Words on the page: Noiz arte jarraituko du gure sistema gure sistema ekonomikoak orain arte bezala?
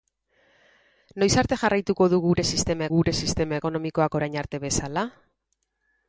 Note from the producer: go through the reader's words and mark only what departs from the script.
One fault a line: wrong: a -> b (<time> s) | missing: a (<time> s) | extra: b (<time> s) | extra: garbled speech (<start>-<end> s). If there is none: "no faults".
no faults